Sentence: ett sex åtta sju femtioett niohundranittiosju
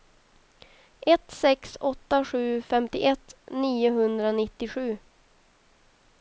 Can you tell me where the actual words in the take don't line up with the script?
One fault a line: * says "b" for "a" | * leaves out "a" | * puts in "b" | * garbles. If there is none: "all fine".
all fine